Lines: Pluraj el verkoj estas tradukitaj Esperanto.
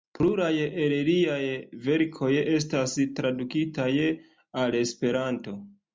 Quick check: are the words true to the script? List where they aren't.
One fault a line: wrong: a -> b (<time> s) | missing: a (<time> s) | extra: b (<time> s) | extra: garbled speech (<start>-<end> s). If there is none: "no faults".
extra: liaj (1.1 s)
extra: al (4.6 s)